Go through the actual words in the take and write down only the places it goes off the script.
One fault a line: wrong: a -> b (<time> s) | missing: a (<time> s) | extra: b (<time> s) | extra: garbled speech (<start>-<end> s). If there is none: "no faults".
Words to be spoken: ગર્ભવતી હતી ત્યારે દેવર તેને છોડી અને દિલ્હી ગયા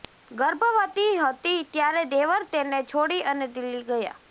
no faults